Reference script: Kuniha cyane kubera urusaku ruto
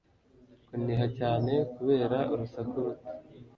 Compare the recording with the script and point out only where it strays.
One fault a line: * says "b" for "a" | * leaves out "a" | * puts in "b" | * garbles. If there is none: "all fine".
all fine